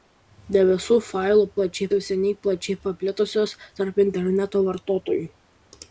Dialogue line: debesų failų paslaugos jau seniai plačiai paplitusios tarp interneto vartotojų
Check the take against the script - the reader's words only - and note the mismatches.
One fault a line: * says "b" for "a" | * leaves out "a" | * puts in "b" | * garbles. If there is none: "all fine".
* says "plačiai" for "paslaugos"